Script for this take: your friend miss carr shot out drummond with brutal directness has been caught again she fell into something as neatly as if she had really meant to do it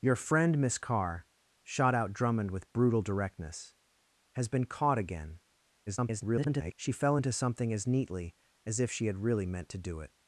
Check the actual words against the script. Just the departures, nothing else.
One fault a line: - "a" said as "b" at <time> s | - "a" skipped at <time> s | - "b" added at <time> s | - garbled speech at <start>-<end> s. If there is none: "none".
- garbled speech at 5.9-6.7 s